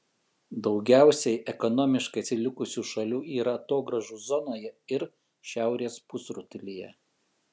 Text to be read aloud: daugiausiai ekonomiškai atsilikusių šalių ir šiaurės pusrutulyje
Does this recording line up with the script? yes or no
no